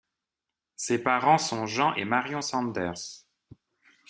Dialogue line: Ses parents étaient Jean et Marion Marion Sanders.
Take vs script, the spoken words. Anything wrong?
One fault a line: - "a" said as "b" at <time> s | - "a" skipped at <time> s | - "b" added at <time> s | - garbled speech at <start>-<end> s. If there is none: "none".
- "étaient" said as "sont" at 1.4 s
- "Marion" skipped at 2.4 s